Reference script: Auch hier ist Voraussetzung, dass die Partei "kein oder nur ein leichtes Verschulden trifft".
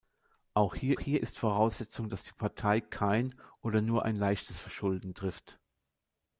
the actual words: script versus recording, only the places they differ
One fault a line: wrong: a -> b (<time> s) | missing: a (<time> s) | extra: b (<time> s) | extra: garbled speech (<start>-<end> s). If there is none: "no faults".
extra: hier (1.0 s)